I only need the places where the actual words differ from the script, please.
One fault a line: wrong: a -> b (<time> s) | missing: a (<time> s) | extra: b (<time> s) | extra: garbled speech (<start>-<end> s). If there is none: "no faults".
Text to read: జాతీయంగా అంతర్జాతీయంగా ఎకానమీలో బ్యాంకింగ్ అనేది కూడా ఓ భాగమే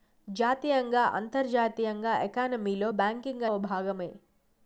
missing: అనేది కూడా (3.5 s)